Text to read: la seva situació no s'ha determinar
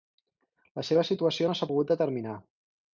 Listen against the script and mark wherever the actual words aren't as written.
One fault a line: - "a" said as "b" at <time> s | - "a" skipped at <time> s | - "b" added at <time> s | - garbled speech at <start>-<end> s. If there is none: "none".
- "pogut" added at 1.7 s